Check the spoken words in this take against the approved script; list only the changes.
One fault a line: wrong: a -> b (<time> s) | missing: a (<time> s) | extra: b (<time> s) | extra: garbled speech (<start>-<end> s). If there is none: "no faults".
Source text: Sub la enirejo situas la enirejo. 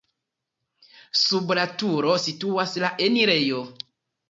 wrong: enirejo -> turo (1.8 s)